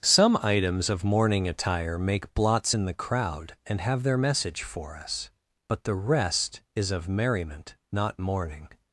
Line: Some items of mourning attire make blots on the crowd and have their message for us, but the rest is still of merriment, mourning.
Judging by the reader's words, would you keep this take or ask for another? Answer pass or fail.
fail